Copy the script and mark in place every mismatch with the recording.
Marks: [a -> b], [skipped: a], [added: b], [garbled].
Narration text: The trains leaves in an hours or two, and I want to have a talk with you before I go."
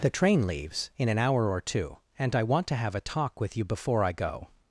The [trains -> train] leaves in an [hours -> hour] or two, and I want to have a talk with you before I go."